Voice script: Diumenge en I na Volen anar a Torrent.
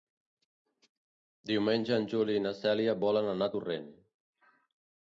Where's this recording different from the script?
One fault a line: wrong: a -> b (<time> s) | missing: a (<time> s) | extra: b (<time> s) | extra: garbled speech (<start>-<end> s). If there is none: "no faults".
extra: Juli (2.1 s)
extra: Cèlia (2.6 s)